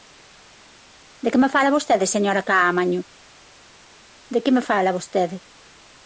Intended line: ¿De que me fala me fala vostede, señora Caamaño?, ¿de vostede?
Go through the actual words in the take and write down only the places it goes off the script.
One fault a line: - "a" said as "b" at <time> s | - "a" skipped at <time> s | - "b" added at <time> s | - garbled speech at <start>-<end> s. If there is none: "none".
- "me fala" skipped at 1.8 s
- "que me fala" added at 4.4 s